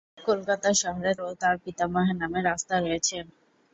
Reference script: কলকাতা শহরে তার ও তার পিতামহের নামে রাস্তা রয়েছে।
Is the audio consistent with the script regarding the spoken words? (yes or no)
no